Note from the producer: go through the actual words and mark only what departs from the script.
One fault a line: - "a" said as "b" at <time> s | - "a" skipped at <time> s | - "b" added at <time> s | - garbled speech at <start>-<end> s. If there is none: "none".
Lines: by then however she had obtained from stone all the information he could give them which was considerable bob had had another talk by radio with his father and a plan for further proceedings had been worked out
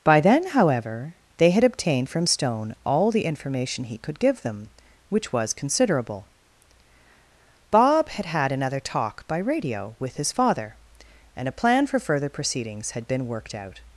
- "she" said as "they" at 1.4 s